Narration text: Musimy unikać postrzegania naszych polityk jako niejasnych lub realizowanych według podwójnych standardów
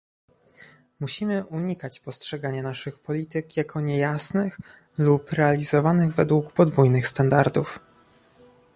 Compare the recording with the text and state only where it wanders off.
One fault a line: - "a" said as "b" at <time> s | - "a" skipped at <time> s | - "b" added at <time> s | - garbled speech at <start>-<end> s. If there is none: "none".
none